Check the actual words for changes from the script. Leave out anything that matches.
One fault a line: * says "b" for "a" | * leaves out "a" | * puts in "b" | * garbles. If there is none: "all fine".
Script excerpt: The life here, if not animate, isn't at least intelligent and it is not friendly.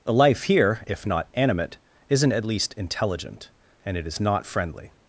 all fine